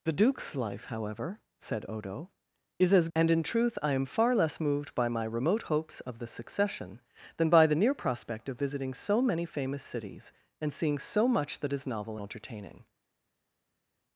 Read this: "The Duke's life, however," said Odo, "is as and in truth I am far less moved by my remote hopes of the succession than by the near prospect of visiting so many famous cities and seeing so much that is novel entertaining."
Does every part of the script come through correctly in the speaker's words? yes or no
yes